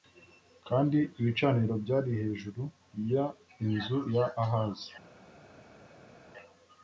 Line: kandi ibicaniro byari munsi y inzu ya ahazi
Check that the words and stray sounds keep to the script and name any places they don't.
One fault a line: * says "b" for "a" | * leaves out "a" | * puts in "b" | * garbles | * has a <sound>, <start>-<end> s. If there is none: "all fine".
* says "hejuru" for "munsi"